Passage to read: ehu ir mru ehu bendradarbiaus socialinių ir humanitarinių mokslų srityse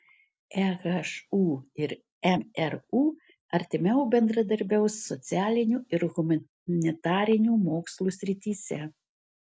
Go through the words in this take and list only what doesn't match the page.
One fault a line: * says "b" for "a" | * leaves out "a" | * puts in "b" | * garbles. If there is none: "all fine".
* says "artimiau" for "ehu"